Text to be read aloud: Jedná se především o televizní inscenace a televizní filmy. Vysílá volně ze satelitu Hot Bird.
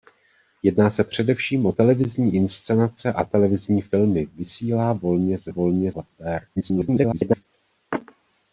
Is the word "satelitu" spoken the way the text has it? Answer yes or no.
no